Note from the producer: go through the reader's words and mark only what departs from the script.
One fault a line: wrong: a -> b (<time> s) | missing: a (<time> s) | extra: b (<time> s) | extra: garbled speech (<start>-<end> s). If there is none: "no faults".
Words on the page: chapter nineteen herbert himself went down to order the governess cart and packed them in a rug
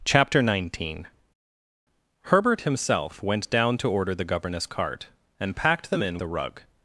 no faults